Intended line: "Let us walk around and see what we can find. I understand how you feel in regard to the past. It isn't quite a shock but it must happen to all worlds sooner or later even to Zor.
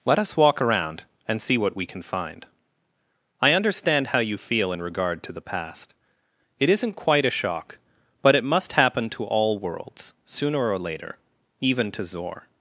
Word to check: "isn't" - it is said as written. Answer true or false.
true